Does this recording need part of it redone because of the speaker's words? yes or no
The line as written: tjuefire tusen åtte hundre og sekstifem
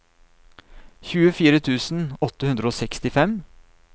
no